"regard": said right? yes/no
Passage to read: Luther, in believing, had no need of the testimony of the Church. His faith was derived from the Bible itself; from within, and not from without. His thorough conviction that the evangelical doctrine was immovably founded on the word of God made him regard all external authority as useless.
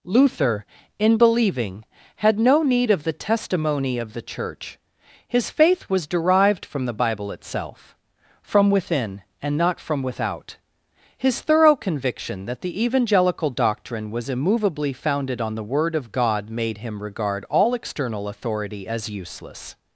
yes